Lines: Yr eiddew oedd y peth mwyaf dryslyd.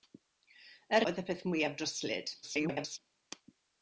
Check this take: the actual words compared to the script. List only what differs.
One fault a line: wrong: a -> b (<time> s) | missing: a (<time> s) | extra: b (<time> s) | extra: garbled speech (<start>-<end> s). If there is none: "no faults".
missing: eiddew (1.1 s)
extra: garbled speech (2.4-3.0 s)